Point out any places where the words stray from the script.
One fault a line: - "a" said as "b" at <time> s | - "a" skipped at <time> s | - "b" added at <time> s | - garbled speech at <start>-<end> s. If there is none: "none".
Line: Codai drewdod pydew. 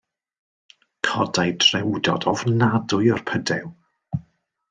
- "ofnadwy o'r" added at 2.3 s